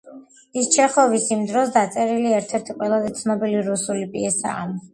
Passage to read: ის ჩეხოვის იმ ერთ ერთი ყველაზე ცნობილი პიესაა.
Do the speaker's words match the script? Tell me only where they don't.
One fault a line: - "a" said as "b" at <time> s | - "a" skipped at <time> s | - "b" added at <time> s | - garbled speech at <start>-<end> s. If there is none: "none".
- "დროს დაწერილი" added at 1.5 s
- "რუსული" added at 3.7 s